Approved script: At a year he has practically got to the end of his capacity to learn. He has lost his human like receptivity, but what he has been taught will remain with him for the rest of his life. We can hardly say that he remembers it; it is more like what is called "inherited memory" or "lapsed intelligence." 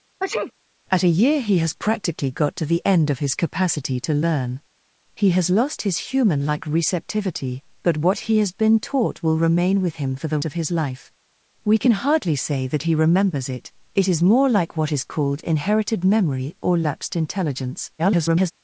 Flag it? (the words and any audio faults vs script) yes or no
yes